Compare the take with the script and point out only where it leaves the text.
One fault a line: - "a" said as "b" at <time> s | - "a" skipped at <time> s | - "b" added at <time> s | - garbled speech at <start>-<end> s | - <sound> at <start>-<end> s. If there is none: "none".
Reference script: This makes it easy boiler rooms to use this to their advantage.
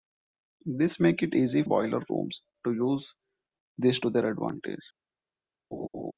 - laugh at 5.7-6.1 s